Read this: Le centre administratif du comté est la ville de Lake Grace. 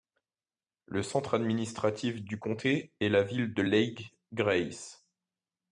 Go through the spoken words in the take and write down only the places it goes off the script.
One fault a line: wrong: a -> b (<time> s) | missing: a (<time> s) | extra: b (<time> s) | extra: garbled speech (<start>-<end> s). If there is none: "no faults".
no faults